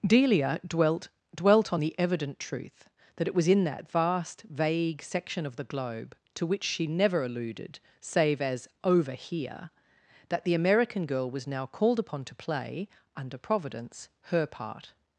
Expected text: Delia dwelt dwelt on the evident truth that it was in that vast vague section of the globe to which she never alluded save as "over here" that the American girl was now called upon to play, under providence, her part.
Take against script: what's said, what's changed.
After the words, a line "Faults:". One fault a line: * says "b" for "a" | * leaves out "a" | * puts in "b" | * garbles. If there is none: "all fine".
Delia dwelt dwelt on the evident truth that it was in that vast vague section of the globe to which she never alluded save as "over here" that the American girl was now called upon to play, under providence, her part.
Faults:
all fine